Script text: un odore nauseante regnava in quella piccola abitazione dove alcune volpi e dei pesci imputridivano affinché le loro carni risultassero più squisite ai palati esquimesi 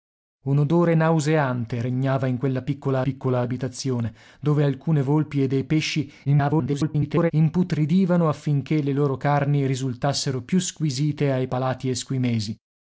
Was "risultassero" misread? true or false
false